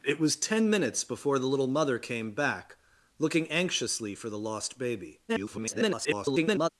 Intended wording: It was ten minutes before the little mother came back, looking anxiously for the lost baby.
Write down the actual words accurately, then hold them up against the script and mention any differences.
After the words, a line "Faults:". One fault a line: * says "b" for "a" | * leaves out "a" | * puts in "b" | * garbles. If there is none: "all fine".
It was ten minutes before the little mother came back, looking anxiously for the lost baby. [garbled]
Faults:
* garbles